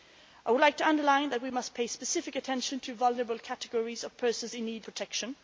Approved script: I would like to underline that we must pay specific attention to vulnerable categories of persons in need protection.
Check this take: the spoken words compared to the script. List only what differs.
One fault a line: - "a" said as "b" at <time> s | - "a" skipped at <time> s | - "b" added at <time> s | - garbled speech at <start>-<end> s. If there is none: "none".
none